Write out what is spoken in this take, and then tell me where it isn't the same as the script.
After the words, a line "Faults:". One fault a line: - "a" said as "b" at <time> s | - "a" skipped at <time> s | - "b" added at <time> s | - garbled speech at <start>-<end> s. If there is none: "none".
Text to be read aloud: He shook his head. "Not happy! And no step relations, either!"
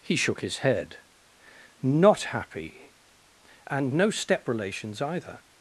He shook his head. "Not happy! And no step relations, either!"
Faults:
none